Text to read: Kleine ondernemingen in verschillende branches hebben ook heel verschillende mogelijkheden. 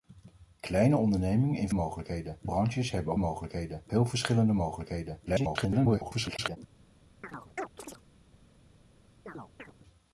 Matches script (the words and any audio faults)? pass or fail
fail